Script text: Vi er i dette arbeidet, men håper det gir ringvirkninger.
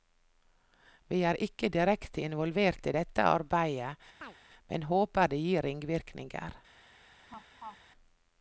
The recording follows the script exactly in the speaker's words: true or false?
false